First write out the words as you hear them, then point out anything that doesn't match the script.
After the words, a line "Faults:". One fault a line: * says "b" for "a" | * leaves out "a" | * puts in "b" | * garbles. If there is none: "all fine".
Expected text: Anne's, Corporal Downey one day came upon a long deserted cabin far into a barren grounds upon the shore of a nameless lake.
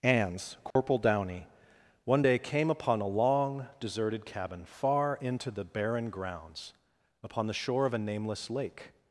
Anne's, Corporal Downey one day came upon a long deserted cabin far into the barren grounds upon the shore of a nameless lake.
Faults:
* says "the" for "a"